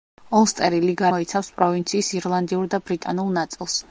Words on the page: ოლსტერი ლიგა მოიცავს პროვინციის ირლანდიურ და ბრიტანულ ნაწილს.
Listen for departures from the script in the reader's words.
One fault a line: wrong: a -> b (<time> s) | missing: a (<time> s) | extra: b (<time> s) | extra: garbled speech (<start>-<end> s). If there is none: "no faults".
no faults